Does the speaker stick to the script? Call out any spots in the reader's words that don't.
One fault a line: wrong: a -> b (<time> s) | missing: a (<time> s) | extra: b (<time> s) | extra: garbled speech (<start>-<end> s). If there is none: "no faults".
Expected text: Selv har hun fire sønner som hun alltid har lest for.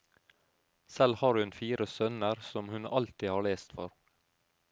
no faults